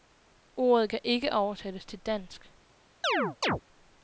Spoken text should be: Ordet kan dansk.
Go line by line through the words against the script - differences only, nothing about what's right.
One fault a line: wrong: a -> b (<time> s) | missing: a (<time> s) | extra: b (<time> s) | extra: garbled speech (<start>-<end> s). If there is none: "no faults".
extra: ikke oversættes til (1.0 s)